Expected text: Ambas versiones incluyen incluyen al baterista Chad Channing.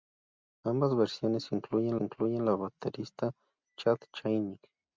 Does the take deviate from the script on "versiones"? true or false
false